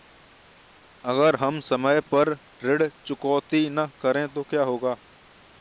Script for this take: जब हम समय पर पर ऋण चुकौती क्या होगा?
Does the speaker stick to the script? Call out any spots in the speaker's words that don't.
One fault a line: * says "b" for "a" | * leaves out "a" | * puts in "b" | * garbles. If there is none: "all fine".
* says "अगर" for "जब"
* leaves out "पर"
* puts in "न करें तो"